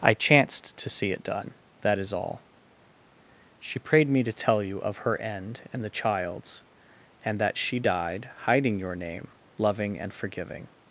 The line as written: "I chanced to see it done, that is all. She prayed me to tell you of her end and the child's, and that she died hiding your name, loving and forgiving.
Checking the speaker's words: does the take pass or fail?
pass